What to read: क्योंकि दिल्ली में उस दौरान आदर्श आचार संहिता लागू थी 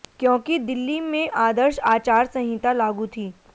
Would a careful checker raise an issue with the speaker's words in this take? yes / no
yes